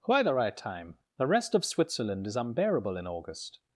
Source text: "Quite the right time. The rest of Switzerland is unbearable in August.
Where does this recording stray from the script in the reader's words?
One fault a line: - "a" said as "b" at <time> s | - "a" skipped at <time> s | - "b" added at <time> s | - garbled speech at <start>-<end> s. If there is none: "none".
none